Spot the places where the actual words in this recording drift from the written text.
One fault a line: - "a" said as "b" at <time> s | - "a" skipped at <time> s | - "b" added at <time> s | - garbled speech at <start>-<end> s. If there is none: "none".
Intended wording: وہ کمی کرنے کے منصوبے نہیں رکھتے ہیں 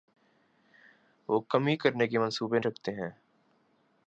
- "نہیں" skipped at 2.6 s